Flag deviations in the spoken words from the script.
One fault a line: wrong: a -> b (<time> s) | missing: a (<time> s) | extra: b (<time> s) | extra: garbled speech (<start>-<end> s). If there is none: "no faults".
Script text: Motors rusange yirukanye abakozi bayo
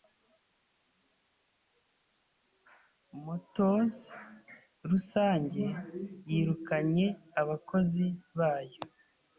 no faults